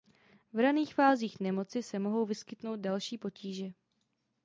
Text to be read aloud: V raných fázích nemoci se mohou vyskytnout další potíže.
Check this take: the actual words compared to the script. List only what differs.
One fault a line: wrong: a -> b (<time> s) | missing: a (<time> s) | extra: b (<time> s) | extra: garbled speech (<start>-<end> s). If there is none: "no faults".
no faults